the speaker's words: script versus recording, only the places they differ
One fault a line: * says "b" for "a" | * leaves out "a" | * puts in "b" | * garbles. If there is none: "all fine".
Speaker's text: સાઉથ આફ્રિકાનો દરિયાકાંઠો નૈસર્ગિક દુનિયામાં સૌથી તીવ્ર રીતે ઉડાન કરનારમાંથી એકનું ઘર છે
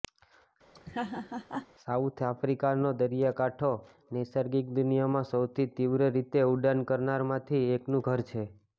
all fine